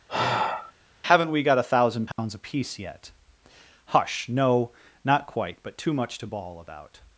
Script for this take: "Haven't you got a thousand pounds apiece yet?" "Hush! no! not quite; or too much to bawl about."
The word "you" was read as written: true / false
false